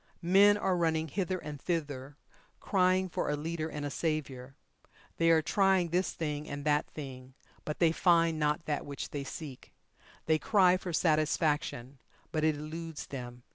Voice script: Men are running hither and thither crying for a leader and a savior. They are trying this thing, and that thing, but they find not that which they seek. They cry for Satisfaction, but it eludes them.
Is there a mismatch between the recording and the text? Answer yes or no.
no